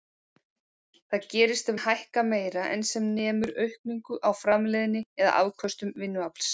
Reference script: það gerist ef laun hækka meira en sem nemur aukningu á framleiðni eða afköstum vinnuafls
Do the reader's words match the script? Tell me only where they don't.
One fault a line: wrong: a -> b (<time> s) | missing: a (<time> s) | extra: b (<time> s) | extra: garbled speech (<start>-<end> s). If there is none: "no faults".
missing: laun (1.8 s)